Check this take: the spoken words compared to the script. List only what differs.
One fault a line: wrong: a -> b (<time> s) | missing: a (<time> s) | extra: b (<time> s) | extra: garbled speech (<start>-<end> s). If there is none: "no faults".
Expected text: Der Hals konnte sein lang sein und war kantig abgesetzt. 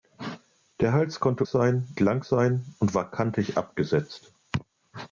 no faults